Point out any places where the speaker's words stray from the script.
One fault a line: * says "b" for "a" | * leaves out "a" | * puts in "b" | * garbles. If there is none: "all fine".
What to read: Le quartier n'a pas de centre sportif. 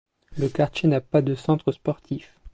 all fine